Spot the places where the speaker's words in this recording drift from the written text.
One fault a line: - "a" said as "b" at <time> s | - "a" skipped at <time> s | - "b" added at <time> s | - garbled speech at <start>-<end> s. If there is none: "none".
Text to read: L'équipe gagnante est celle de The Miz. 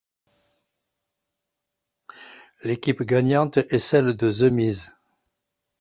none